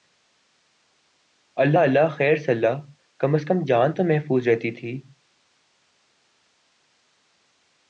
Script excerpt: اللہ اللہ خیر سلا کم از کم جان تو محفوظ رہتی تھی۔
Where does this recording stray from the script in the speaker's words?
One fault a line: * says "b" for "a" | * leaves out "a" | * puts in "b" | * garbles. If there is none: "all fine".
all fine